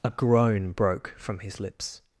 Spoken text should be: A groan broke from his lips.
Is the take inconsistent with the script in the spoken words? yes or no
no